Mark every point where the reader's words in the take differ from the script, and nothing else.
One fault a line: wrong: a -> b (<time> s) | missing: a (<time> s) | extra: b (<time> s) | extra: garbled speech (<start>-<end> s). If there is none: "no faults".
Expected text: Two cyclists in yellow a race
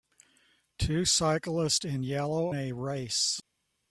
no faults